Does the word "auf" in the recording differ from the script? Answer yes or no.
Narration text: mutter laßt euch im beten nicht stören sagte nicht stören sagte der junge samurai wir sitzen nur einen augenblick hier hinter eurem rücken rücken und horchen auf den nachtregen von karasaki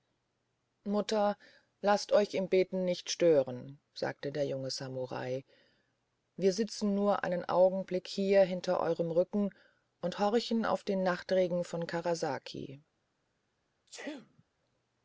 no